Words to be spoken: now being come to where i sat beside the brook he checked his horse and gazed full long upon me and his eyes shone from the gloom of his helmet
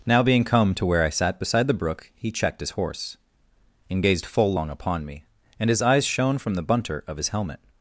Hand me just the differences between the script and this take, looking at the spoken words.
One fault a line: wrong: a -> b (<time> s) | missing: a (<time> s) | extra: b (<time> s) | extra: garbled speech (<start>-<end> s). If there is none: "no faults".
wrong: gloom -> bunter (6.6 s)